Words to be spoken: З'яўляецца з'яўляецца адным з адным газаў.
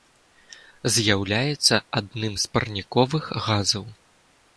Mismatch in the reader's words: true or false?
true